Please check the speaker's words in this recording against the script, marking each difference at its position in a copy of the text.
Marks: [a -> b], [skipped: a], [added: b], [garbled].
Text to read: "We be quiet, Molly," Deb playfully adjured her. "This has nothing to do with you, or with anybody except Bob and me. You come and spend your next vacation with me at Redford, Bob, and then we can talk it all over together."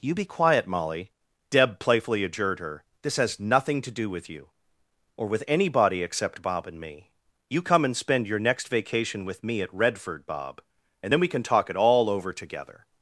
["We -> You] be quiet, Molly," Deb playfully adjured her. "This has nothing to do with you, or with anybody except Bob and me. You come and spend your next vacation with me at Redford, Bob, and then we can talk it all over together."